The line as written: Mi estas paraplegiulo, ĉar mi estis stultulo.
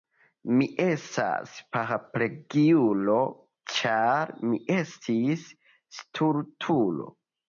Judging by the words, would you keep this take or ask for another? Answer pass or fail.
pass